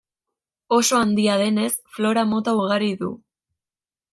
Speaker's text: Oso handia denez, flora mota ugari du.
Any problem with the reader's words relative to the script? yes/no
no